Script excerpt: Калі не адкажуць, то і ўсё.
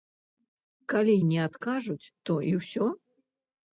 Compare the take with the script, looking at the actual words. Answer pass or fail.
pass